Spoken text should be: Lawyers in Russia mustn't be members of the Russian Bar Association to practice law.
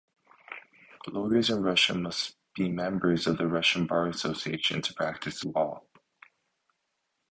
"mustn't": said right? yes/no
no